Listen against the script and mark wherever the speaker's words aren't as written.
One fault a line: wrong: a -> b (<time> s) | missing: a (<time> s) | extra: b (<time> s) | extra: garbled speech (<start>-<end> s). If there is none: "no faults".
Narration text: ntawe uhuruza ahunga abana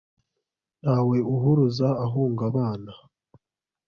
no faults